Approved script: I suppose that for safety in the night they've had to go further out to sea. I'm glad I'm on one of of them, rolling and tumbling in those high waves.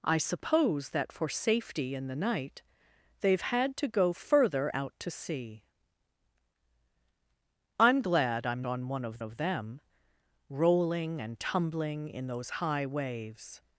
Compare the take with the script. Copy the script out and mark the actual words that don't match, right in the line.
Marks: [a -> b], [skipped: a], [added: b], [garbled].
I suppose that for safety in the night they've had to go further out to sea. I'm glad I'm on one of of them, rolling and tumbling in those high waves.